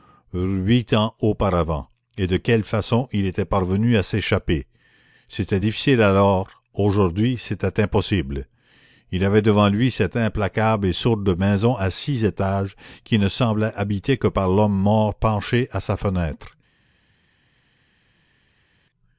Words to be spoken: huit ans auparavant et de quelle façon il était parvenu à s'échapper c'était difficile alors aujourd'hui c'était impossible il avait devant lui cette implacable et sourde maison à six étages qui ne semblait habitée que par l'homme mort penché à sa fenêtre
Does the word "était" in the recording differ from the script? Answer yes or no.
no